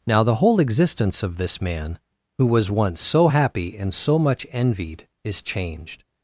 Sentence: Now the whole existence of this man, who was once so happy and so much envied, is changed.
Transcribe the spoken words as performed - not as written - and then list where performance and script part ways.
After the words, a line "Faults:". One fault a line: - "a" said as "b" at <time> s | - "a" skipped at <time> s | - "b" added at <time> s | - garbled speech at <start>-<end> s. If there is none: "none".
Now the whole existence of this man, who was once so happy and so much envied, is changed.
Faults:
none